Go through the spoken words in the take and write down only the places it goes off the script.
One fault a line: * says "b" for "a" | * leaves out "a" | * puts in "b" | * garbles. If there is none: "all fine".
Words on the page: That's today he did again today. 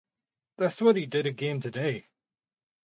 * says "what" for "today"